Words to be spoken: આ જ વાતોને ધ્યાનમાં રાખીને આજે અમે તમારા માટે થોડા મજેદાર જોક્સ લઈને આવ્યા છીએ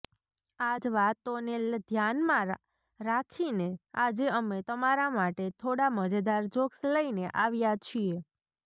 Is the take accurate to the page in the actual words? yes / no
yes